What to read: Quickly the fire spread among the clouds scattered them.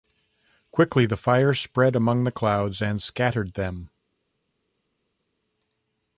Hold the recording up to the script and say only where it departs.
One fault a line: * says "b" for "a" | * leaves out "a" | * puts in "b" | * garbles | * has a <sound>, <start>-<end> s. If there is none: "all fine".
* puts in "and"